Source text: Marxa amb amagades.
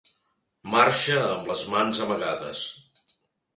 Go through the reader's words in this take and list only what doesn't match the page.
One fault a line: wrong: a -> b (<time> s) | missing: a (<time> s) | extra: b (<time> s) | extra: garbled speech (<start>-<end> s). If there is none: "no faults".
extra: les mans (1.5 s)